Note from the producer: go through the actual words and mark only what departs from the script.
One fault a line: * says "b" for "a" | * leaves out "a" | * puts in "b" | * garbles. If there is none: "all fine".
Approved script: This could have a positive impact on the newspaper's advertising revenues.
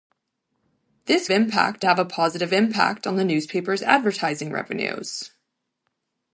* says "impact" for "could"